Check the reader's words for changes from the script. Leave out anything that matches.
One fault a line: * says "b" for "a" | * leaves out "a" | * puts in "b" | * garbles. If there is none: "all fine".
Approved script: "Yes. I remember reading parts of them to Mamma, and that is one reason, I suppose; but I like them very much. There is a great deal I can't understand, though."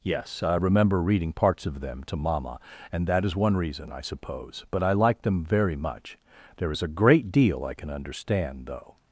* says "can" for "can't"